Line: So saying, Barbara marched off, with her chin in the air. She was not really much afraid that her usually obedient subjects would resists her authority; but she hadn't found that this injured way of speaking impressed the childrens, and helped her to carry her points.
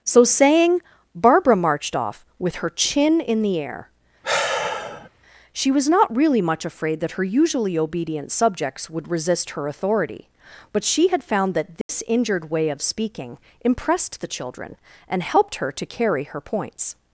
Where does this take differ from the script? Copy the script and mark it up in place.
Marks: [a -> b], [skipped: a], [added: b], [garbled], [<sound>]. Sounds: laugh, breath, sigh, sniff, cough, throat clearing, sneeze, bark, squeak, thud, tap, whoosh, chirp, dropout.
So saying, Barbara marched off, with her chin in the air. [sigh] She was not really much afraid that her usually obedient subjects would [resists -> resist] her authority; but she [hadn't -> had] found that this [dropout] injured way of speaking impressed the [childrens, -> children] and helped her to carry her points.